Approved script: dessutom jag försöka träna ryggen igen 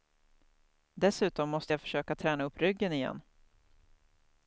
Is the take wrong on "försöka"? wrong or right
right